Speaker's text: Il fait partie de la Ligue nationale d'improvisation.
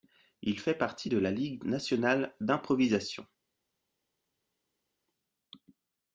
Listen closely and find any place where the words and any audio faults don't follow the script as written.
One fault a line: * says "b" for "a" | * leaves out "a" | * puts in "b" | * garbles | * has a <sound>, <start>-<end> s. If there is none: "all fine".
all fine